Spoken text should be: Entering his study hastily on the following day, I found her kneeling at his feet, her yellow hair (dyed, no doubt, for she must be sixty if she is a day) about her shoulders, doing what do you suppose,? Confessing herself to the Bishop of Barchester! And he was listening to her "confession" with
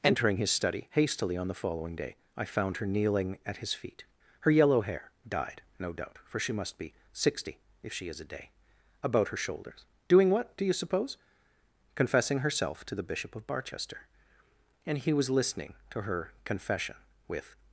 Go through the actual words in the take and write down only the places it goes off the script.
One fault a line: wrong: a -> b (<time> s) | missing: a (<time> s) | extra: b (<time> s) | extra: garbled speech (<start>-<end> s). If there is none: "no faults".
no faults